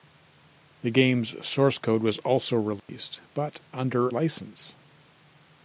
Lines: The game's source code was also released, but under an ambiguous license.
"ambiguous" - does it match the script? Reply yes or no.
no